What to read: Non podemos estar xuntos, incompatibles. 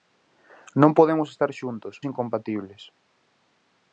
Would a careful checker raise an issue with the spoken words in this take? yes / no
no